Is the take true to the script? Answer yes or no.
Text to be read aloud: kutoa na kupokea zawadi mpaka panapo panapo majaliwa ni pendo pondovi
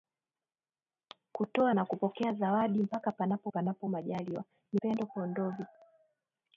yes